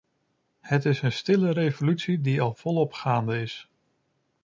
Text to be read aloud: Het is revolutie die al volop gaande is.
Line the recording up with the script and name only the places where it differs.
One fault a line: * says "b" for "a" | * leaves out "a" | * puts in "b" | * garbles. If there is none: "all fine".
* puts in "een stille"